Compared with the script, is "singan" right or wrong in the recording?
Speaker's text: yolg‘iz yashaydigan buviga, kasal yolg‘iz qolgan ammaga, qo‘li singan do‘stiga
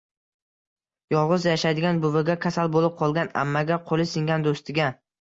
right